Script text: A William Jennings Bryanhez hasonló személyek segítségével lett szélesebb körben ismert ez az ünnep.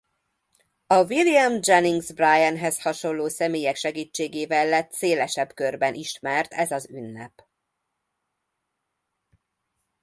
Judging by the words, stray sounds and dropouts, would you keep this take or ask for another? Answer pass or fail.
pass